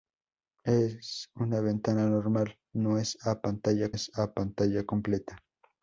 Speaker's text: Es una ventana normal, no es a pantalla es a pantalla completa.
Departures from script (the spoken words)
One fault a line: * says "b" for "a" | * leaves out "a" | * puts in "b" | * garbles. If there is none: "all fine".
all fine